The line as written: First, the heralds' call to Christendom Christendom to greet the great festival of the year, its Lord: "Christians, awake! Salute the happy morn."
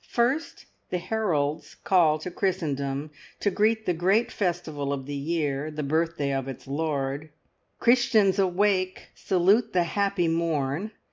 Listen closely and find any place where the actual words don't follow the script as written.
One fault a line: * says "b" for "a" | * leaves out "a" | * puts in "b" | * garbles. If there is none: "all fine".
* leaves out "Christendom"
* puts in "the birthday of"